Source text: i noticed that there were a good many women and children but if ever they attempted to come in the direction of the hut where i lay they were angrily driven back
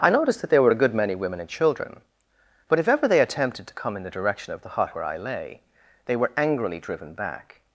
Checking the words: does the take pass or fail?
pass